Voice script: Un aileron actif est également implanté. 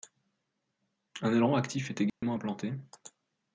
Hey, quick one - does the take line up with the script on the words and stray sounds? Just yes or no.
no